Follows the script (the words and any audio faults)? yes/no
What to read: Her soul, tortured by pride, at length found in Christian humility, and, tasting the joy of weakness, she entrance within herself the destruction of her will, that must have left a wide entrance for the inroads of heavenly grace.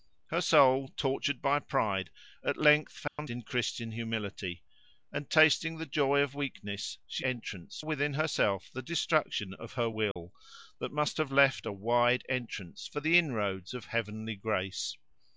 no